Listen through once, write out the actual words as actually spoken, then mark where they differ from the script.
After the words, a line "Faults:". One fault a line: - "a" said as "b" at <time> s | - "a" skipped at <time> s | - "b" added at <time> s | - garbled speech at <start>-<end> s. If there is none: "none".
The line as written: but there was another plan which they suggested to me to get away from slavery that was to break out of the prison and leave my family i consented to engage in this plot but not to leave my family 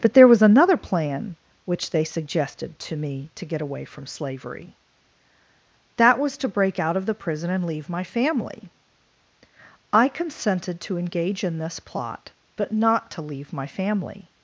but there was another plan which they suggested to me to get away from slavery that was to break out of the prison and leave my family i consented to engage in this plot but not to leave my family
Faults:
none